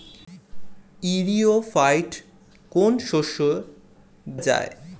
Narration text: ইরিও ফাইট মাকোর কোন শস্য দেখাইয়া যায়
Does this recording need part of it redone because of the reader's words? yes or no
yes